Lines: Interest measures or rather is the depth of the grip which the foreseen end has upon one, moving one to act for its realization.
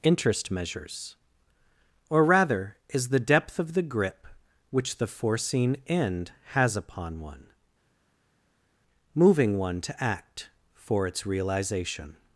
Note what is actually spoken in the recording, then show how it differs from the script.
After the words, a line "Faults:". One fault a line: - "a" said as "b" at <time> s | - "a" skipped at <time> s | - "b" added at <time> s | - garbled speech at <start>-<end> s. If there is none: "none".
Interest measures or rather is the depth of the grip which the foreseen end has upon one, moving one to act for its realization.
Faults:
none